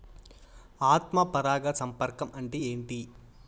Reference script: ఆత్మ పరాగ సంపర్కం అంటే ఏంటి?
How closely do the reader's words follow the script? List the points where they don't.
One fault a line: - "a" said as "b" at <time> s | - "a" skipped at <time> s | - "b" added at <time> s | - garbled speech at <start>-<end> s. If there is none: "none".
none